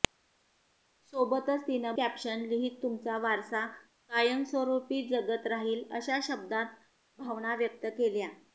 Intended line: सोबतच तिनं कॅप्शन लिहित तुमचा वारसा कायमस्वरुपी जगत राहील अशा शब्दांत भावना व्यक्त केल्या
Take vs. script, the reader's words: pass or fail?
pass